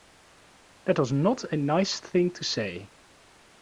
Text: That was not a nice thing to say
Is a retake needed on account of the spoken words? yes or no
no